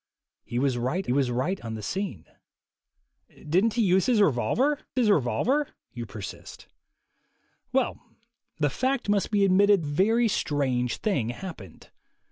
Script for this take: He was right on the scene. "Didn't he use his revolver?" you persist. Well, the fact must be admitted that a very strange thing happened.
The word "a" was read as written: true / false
false